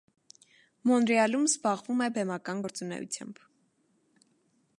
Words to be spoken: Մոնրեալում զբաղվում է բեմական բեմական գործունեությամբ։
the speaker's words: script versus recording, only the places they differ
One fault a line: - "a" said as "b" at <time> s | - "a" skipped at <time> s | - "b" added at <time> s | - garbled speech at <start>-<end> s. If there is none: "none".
- "բեմական" skipped at 2.6 s